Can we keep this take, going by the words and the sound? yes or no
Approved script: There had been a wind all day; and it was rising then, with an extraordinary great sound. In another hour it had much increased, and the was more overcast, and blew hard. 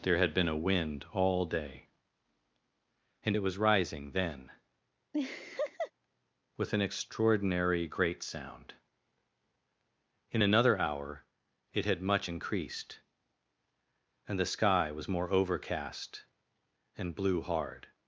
no